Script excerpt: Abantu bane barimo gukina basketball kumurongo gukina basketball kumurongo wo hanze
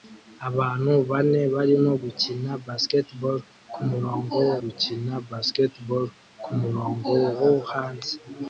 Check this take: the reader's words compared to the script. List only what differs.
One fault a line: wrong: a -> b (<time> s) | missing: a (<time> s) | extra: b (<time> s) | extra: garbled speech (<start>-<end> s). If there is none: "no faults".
no faults